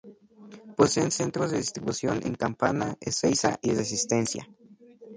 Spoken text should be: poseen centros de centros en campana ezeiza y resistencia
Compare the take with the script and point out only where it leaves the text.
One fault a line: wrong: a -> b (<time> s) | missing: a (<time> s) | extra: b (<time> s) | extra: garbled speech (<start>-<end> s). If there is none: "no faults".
wrong: centros -> distribución (1.6 s)